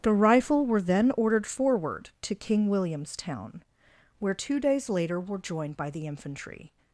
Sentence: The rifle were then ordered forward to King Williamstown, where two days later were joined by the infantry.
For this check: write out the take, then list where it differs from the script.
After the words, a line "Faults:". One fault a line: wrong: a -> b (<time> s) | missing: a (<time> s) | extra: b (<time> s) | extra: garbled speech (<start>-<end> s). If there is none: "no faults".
The rifle were then ordered forward to King Williamstown, where two days later were joined by the infantry.
Faults:
no faults